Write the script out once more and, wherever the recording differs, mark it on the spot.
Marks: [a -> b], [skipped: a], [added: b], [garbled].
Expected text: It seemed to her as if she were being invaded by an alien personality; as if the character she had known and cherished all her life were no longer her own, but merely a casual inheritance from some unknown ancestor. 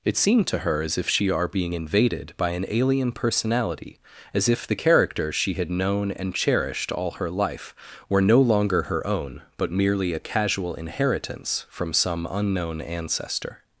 It seemed to her as if she [were -> are] being invaded by an alien personality; as if the character she had known and cherished all her life were no longer her own, but merely a casual inheritance from some unknown ancestor.